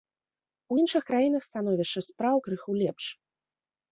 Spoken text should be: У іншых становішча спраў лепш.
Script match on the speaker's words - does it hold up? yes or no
no